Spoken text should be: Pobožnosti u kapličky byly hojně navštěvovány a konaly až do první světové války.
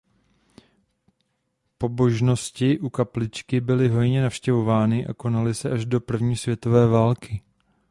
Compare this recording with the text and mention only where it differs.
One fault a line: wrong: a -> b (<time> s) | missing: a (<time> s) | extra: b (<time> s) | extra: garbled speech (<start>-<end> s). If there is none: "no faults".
extra: se (5.5 s)